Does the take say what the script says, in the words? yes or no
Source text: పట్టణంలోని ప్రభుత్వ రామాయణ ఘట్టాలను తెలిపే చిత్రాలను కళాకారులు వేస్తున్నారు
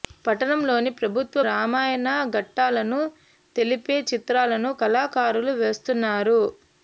yes